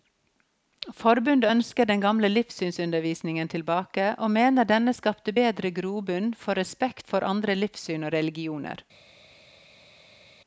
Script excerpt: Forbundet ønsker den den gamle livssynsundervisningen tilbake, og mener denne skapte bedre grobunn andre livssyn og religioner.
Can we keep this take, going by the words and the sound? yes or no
no